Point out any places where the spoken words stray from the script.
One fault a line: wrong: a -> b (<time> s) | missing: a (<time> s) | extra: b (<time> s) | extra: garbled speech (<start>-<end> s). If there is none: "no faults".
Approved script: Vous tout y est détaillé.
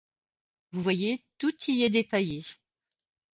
extra: voyez (0.8 s)